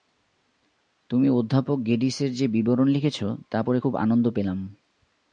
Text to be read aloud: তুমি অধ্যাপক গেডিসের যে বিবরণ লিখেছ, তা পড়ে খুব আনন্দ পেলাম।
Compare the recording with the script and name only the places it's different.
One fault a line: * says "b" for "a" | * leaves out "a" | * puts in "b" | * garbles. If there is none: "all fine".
all fine